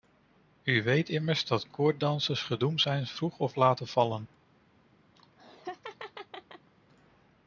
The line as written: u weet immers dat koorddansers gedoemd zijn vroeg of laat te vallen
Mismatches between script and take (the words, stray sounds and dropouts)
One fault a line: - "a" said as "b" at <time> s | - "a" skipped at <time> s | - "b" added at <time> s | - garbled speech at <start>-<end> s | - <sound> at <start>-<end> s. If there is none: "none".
- laugh at 5.2-6.7 s